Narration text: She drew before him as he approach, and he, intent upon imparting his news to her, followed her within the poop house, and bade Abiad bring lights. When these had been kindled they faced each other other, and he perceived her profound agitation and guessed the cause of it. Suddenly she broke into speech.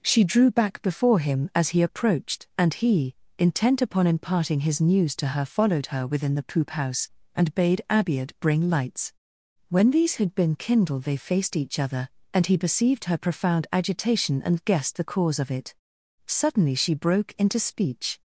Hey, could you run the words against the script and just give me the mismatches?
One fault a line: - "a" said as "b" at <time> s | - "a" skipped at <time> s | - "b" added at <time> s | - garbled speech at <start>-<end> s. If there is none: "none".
- "back" added at 0.5 s
- "approach" said as "approached" at 1.8 s
- "other" skipped at 12.1 s